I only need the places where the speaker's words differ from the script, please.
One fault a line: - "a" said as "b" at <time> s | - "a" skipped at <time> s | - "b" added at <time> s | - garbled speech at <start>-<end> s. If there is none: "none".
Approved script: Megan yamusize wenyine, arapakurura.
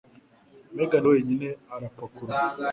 - "yamusize" skipped at 1.1 s